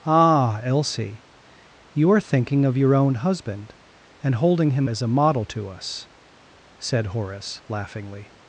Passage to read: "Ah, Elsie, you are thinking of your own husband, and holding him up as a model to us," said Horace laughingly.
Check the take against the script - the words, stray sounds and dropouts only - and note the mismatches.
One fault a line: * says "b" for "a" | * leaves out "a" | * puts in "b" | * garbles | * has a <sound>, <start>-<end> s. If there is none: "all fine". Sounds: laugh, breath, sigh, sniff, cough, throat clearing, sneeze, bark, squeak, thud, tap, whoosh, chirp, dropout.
* leaves out "up"